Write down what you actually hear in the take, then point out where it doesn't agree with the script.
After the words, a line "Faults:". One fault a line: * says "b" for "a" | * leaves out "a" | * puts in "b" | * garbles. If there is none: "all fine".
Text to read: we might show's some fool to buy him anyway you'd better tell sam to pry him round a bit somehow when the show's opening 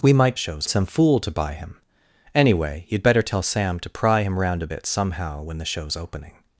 we might show's some fool to buy him anyway you'd better tell sam to pry him round a bit somehow when the show's opening
Faults:
all fine